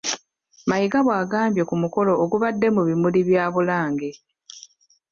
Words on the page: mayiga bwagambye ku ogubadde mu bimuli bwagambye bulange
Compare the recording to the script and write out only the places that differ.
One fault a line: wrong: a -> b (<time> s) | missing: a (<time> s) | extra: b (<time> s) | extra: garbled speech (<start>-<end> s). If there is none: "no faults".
extra: mukolo (1.8 s)
wrong: bwagambye -> bya (3.3 s)